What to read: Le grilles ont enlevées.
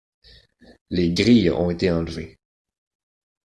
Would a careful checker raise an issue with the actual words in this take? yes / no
yes